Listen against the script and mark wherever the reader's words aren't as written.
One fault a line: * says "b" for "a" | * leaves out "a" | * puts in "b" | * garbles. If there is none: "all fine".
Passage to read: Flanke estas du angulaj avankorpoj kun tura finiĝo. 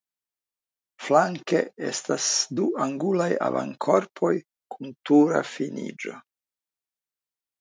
all fine